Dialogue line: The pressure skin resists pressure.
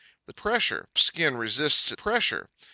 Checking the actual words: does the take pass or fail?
pass